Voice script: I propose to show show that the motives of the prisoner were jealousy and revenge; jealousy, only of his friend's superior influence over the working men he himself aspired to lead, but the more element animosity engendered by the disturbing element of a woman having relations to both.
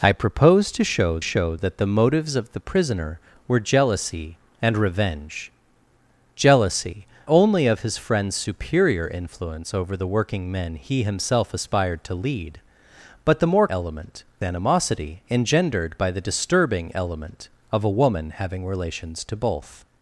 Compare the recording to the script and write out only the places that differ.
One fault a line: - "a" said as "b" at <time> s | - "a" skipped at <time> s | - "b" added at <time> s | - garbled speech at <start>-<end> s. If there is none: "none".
none